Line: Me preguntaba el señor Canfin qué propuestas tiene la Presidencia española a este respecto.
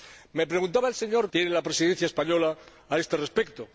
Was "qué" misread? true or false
true